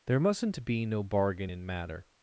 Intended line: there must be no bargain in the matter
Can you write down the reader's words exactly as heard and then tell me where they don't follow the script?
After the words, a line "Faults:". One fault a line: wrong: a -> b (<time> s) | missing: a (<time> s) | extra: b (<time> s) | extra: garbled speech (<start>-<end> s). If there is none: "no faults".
there mustn't be no bargain in matter
Faults:
wrong: must -> mustn't (0.2 s)
missing: the (1.6 s)